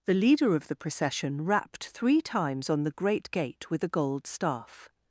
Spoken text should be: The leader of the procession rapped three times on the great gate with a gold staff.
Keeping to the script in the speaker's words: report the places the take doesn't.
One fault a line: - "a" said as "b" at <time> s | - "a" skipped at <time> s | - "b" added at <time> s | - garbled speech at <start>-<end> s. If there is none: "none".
none